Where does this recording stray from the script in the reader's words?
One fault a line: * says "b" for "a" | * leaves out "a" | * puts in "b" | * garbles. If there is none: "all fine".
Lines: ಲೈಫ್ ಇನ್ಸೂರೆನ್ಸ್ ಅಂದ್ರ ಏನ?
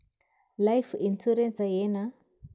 * leaves out "ಅಂದ್ರ"